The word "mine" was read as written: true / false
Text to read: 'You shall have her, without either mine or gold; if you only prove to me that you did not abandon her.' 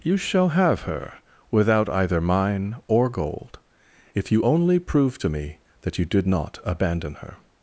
true